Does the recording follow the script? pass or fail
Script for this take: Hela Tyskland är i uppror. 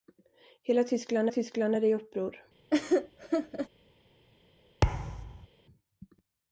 fail